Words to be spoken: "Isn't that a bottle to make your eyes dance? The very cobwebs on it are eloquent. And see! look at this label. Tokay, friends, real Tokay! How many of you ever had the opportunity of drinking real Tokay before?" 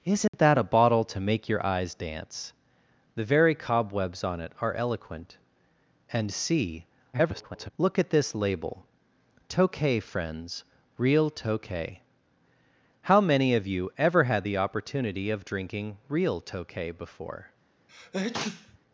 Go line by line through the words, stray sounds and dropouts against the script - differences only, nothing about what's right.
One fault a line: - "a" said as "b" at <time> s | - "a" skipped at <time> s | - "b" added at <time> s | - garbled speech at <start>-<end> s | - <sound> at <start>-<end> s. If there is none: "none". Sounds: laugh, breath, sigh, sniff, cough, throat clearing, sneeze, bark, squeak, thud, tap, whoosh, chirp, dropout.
- dropout at 0.3-0.3 s
- garbled speech at 7.1-7.7 s
- sneeze at 17.9-18.8 s